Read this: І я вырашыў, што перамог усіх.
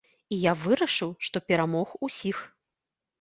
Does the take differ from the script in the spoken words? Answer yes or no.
no